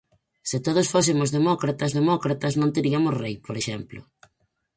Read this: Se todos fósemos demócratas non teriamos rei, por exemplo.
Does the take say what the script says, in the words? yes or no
no